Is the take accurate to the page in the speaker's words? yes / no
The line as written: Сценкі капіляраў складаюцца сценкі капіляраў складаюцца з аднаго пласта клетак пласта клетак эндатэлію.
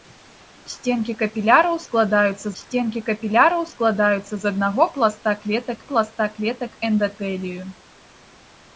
yes